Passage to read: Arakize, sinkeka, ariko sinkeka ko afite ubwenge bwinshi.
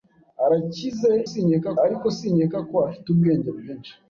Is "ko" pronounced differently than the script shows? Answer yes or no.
no